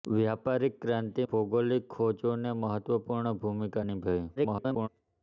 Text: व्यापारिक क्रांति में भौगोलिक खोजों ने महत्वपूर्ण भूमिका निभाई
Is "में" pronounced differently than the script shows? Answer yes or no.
yes